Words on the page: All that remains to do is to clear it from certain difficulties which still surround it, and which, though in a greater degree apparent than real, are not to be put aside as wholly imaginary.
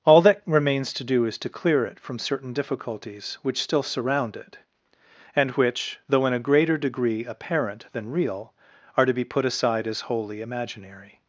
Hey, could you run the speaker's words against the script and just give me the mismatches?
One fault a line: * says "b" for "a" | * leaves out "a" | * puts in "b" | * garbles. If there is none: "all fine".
* leaves out "not"